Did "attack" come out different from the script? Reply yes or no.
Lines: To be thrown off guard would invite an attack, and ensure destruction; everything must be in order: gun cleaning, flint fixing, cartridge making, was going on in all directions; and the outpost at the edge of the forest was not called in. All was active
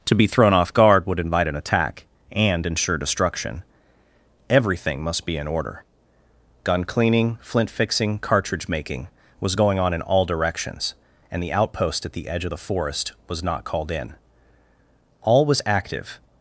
no